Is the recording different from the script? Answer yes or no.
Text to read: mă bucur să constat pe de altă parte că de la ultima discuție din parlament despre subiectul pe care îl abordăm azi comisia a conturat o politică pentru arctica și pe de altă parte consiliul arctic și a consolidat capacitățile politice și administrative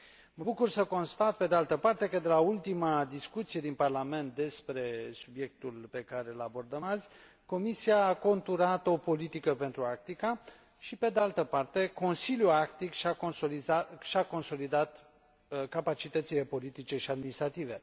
no